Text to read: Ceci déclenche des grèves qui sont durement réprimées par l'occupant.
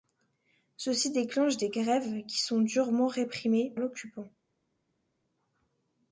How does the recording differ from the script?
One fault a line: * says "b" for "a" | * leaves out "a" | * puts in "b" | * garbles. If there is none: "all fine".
* leaves out "par"